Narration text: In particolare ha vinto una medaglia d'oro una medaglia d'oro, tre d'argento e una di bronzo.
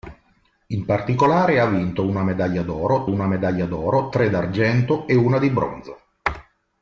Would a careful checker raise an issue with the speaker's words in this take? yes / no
no